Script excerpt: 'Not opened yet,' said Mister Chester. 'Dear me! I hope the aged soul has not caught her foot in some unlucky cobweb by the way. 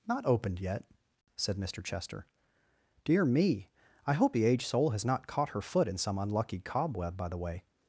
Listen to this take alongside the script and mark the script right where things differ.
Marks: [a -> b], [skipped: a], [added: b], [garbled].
'Not opened yet,' said Mister Chester. 'Dear me! I hope the aged soul has not caught her foot in some unlucky cobweb by the way.